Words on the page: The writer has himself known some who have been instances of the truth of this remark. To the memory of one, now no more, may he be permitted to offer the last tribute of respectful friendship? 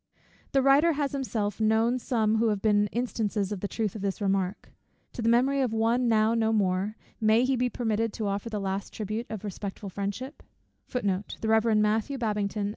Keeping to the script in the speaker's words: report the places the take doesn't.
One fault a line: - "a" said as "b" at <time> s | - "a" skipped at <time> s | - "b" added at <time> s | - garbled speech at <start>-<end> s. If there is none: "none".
none